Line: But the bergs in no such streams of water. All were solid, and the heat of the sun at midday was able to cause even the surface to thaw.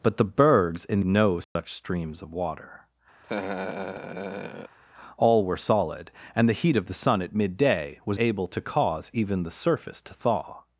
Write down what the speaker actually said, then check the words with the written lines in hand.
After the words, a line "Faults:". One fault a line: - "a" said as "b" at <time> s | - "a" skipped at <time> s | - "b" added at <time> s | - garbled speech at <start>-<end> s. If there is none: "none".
But the bergs in no such streams of water. All were solid, and the heat of the sun at midday was able to cause even the surface to thaw.
Faults:
none